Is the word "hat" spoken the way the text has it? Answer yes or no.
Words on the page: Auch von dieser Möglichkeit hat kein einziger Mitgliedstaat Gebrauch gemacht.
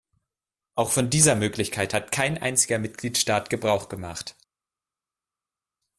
yes